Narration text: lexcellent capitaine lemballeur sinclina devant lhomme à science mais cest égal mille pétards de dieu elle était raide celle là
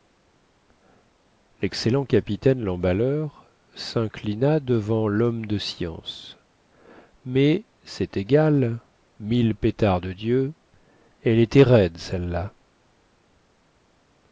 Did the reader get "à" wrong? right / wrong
wrong